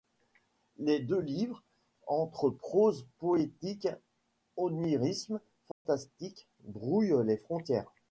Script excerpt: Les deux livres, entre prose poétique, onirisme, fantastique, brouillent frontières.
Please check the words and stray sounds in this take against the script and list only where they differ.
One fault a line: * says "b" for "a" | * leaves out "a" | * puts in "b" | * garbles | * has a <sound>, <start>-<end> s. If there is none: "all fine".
* has a dropout, 5.7-5.9 s
* puts in "les"